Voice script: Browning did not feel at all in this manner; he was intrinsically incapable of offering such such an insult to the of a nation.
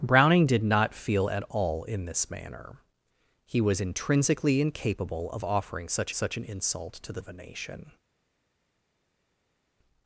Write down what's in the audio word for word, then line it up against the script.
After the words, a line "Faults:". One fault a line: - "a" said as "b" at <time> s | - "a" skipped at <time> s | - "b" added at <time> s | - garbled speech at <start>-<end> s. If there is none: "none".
Browning did not feel at all in this manner; he was intrinsically incapable of offering such such an insult to the of a nation.
Faults:
none